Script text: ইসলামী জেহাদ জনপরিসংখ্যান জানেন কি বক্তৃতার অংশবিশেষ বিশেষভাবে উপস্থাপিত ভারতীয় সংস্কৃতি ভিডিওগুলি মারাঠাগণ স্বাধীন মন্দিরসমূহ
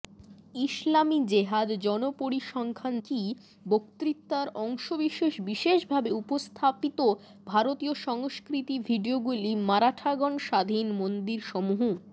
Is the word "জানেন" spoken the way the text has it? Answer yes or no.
no